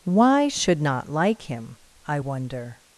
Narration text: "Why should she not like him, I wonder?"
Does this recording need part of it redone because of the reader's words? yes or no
yes